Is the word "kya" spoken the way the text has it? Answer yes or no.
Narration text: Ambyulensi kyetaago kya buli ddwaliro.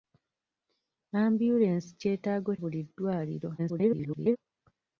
no